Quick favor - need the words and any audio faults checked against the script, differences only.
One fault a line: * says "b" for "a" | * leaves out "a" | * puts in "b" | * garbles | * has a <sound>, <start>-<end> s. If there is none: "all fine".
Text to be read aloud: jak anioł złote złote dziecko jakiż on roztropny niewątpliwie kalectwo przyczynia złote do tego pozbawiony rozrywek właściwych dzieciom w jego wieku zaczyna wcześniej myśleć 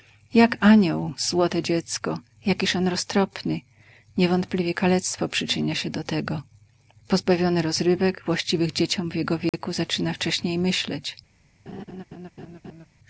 * leaves out "złote"
* says "się" for "złote"
* has a dropout, 9.5-9.5 s
* has a laugh, 11.7-12.9 s